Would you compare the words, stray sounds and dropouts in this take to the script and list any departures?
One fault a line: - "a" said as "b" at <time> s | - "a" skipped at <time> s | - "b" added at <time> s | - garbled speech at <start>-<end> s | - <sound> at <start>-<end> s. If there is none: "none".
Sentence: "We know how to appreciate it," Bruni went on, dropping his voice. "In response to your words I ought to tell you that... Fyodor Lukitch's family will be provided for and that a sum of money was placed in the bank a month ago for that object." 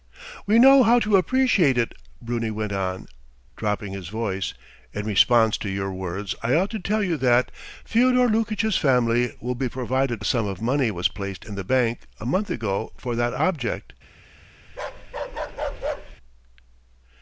- "for and that" skipped at 10.2 s
- bark at 14.7-16.2 s